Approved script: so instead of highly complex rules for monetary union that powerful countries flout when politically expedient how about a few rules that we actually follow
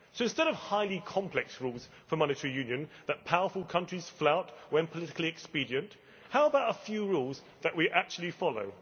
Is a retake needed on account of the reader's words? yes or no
no